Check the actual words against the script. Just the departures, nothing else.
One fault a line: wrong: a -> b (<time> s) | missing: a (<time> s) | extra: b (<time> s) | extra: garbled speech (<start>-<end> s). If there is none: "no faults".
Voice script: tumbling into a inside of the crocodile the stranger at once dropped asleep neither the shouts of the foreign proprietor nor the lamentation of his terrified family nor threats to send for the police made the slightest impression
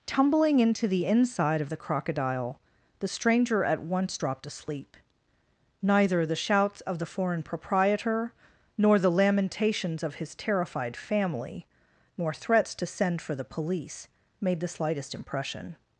wrong: a -> the (0.9 s)
wrong: lamentation -> lamentations (9.1 s)